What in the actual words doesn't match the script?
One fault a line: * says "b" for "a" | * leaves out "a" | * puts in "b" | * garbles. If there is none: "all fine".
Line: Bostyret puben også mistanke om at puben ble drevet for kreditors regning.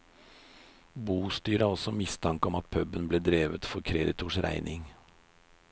* says "har" for "puben"